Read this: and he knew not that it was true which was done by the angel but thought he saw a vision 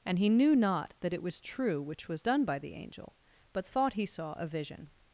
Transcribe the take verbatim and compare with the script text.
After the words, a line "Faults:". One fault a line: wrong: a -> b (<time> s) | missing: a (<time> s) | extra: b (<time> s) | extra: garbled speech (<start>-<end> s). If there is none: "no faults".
and he knew not that it was true which was done by the angel but thought he saw a vision
Faults:
no faults